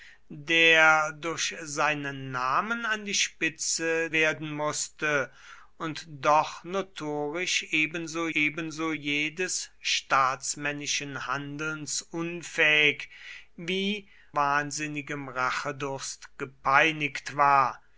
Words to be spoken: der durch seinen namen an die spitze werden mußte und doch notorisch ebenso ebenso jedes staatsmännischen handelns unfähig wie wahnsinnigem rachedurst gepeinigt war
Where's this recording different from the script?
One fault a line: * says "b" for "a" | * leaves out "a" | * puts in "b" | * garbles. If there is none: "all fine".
all fine